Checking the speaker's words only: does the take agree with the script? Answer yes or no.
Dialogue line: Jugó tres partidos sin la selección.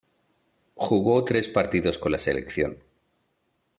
no